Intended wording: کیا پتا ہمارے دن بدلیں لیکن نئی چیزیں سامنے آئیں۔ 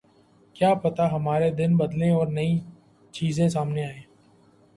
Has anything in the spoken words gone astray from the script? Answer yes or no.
yes